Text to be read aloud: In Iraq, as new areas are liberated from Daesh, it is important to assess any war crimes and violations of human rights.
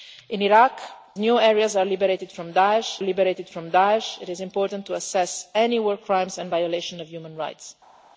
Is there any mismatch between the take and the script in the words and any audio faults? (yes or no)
yes